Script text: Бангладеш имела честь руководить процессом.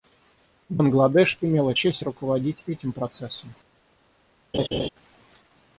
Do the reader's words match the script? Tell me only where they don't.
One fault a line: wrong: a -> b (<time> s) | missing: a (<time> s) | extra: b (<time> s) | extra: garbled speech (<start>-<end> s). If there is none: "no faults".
extra: этим (2.7 s)